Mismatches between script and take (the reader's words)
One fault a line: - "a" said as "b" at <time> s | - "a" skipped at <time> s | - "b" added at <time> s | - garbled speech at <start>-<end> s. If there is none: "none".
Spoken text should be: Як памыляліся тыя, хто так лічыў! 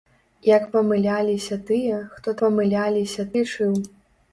- "так" said as "памыляліся" at 2.4 s